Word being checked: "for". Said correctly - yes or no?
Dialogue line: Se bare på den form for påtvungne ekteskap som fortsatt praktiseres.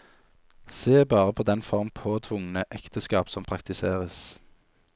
no